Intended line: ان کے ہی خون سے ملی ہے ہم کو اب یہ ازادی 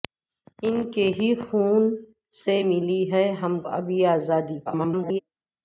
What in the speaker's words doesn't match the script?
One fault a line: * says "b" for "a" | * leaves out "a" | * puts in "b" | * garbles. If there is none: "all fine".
* leaves out "کو"
* garbles